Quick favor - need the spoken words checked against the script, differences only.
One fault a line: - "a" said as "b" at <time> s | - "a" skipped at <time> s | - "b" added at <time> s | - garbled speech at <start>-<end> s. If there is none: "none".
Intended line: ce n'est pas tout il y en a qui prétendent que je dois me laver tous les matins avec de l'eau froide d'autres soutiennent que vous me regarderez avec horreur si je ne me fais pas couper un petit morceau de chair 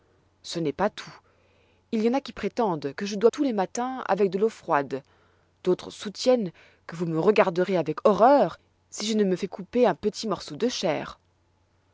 - "me laver" skipped at 3.3 s
- "pas" skipped at 9.5 s